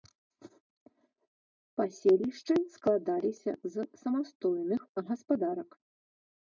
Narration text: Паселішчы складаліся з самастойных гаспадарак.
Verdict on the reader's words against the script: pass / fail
pass